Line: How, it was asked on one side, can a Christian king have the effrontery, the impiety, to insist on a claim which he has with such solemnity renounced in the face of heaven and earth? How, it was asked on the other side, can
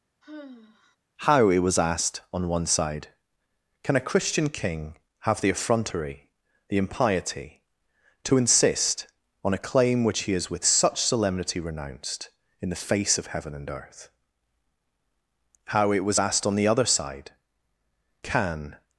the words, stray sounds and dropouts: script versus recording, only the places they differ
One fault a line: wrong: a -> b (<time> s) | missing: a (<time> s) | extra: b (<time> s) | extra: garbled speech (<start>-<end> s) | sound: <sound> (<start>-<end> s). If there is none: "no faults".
sound: sigh (0.2-1.0 s)